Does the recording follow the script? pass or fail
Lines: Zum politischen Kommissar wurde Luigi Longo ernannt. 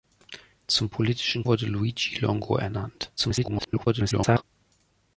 fail